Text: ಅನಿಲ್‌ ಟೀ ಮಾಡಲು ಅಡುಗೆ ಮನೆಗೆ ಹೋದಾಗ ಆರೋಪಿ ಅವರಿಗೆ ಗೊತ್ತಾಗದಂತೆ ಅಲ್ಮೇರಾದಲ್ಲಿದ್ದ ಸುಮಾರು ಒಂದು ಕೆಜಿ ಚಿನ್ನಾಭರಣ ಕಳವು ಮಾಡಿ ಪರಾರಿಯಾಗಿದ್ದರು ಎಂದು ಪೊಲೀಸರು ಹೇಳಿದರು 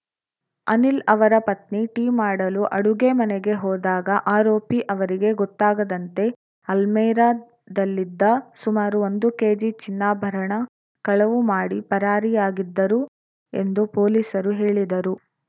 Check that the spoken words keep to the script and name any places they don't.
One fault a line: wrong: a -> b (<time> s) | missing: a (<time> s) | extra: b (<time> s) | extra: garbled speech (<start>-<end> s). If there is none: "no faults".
extra: ಅವರ ಪತ್ನಿ (1.1 s)